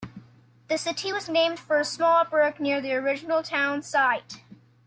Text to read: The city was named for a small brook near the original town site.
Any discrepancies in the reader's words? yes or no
no